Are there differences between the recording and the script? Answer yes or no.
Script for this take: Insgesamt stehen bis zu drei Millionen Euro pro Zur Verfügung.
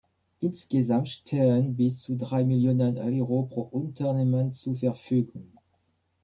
yes